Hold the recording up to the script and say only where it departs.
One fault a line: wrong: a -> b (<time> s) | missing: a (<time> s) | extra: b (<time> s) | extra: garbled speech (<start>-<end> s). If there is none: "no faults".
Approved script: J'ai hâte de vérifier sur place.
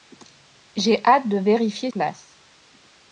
missing: sur (1.9 s)